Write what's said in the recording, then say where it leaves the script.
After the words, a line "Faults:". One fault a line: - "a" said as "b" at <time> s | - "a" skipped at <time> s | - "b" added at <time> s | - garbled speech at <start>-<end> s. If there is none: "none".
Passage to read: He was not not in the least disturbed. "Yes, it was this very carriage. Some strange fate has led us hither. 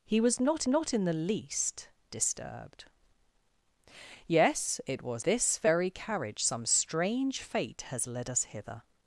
He was not not in the least disturbed. "Yes, it was this very carriage. Some strange fate has led us hither.
Faults:
none